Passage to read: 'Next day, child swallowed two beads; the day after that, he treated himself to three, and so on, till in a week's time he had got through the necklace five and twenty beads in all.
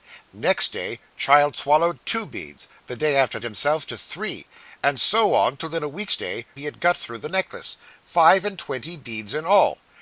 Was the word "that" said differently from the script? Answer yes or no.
yes